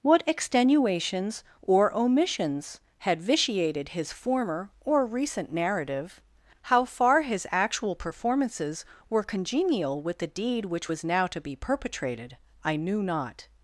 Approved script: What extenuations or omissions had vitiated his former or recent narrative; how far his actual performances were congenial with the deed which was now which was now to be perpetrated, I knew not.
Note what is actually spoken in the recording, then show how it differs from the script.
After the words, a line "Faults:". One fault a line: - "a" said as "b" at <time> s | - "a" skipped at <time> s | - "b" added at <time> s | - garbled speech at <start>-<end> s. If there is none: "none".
What extenuations or omissions had vitiated his former or recent narrative; how far his actual performances were congenial with the deed which was now to be perpetrated, I knew not.
Faults:
- "which was now" skipped at 11.3 s